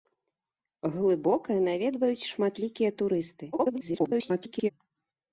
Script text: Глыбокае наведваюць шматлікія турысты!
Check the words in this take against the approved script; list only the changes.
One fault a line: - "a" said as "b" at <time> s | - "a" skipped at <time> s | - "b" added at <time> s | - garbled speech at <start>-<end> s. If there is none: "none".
- garbled speech at 3.5-4.7 s